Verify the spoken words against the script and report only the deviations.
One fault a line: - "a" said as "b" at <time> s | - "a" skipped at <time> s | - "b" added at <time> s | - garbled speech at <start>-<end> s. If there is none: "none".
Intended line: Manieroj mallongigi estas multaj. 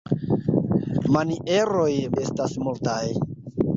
- "mallongigi" skipped at 1.9 s